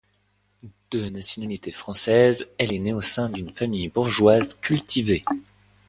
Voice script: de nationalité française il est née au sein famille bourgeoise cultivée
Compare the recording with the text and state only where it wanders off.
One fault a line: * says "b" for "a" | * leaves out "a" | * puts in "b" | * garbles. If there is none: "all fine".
* says "elle" for "il"
* puts in "d'une"